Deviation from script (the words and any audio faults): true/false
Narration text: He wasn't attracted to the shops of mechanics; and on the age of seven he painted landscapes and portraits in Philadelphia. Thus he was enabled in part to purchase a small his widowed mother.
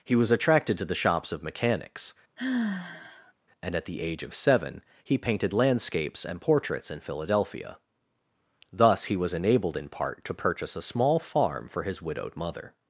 true